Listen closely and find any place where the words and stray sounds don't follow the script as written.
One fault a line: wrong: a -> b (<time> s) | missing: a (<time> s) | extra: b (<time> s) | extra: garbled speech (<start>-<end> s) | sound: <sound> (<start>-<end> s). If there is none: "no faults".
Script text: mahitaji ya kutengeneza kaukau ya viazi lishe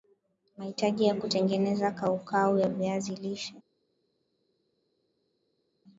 no faults